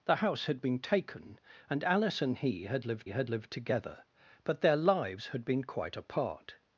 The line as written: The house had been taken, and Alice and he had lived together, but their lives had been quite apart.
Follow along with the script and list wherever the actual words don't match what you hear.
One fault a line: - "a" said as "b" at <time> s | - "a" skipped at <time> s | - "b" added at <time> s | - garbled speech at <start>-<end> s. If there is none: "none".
- "had lived" added at 3.1 s